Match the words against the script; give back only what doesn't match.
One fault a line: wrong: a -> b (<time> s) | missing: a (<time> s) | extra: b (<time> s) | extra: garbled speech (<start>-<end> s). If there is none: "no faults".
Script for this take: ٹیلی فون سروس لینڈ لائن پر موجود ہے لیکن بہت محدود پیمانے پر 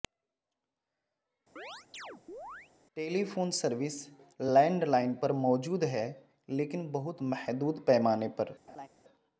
no faults